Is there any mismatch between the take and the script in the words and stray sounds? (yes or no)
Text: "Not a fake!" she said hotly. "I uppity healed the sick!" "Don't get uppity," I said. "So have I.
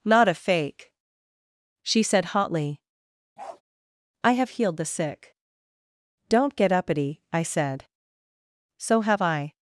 yes